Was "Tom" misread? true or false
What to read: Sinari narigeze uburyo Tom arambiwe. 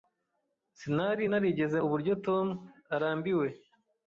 false